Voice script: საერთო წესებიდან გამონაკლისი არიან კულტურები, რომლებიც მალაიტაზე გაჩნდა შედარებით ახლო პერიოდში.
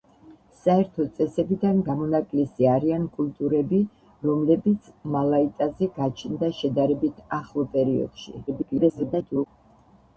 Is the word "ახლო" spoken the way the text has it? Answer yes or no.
yes